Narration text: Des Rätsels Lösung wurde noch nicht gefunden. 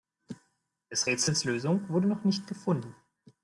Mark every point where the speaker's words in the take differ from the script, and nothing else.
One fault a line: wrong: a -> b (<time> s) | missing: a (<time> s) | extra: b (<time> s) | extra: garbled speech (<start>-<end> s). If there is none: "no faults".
no faults